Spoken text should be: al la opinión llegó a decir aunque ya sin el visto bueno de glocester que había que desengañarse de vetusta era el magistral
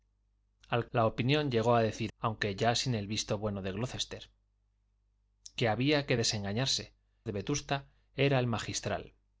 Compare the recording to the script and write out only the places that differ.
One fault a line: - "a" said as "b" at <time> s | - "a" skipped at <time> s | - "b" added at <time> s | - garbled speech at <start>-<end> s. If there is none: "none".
none